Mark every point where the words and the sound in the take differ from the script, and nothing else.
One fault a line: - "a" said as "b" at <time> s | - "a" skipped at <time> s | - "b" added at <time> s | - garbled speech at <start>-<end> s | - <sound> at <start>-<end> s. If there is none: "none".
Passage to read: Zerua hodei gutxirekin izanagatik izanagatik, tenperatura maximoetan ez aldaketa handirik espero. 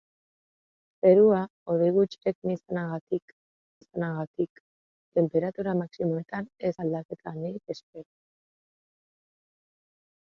none